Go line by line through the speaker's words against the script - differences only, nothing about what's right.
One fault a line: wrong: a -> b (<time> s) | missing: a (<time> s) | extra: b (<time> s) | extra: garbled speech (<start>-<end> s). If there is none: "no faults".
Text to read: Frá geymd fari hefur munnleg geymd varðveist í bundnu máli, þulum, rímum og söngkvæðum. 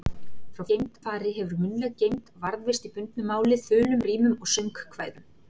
no faults